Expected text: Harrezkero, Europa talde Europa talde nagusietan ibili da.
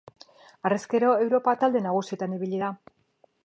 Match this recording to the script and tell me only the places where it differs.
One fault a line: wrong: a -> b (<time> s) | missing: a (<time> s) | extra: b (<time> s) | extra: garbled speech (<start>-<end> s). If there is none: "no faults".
missing: Europa talde (1.8 s)